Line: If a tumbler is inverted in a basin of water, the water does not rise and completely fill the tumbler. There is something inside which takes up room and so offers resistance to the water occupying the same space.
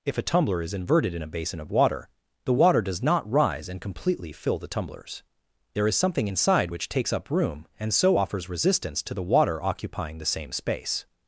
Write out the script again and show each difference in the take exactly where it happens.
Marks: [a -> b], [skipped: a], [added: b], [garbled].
If a tumbler is inverted in a basin of water, the water does not rise and completely fill the [tumbler. -> tumblers] There is something inside which takes up room and so offers resistance to the water occupying the same space.